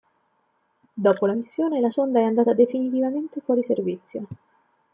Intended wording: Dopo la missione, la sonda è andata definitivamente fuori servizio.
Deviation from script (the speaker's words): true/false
false